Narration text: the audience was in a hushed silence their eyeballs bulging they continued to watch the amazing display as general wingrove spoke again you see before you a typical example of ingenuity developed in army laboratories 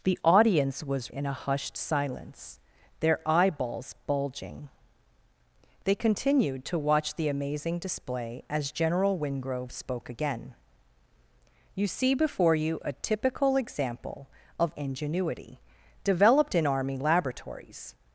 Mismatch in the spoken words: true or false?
false